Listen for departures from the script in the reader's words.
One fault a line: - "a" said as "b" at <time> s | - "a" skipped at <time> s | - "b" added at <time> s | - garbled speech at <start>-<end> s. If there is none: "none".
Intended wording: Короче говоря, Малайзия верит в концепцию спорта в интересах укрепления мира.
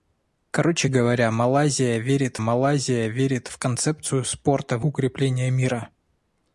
- "Малайзия верит" added at 2.4 s
- "интересах" skipped at 4.9 s